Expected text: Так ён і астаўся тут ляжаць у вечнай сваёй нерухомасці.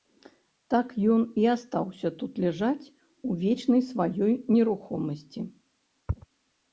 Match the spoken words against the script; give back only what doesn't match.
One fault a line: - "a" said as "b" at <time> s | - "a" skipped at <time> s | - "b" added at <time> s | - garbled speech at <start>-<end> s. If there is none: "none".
none